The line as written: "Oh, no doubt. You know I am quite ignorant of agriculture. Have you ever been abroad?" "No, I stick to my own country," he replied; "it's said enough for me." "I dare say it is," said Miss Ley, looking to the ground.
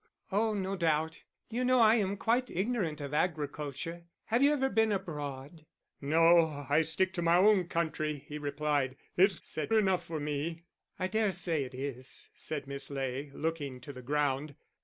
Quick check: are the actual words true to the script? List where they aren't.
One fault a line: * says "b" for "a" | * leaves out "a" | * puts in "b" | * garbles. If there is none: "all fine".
all fine